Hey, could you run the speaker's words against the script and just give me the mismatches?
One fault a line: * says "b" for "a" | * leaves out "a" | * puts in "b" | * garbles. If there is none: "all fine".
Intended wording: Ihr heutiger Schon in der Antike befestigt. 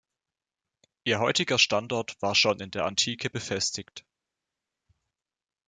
* puts in "Standort war"